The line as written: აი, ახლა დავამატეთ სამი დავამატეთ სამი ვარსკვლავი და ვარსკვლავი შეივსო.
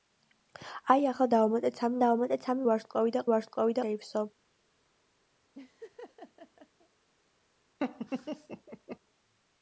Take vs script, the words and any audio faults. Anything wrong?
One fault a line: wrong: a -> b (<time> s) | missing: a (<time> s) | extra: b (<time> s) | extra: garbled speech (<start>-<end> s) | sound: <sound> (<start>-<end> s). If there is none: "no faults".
sound: laugh (5.5-6.9 s)
sound: laugh (7.8-9.0 s)